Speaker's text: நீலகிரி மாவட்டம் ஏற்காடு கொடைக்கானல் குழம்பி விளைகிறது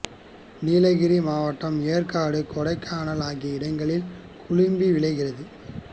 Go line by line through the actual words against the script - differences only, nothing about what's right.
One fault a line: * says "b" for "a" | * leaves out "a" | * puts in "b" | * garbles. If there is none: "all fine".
* puts in "ஆகிய இடங்களில்"